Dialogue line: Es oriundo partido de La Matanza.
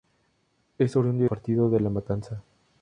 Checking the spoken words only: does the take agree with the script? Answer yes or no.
yes